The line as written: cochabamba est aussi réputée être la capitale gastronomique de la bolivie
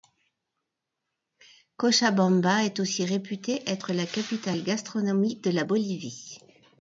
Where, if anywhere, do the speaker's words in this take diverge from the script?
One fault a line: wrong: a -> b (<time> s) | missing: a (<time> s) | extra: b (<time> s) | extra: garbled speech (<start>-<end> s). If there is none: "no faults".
no faults